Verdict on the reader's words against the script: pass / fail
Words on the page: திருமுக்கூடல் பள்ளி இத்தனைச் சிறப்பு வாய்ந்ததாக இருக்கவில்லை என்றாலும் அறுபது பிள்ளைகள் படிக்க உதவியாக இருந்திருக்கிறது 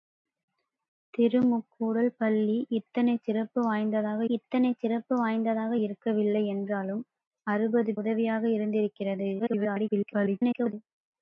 fail